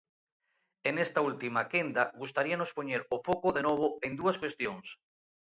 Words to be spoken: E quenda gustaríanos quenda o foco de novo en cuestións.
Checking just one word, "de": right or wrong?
right